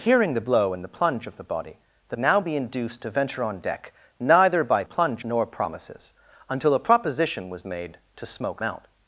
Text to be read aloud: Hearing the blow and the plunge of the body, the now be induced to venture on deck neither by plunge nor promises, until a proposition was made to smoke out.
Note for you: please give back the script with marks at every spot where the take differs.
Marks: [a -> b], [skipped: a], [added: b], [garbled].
Hearing the blow and the plunge of the body, the now be induced to venture on deck neither by plunge nor promises, until a proposition was made to smoke out.